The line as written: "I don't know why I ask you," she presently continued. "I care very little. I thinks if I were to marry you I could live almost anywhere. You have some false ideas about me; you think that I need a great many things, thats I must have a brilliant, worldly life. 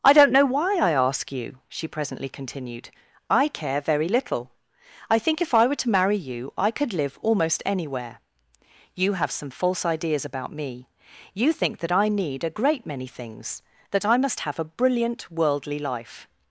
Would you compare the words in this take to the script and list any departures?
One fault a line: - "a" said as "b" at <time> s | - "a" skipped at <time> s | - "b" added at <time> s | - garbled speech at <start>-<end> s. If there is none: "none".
- "thinks" said as "think" at 5.2 s
- "thats" said as "that" at 13.9 s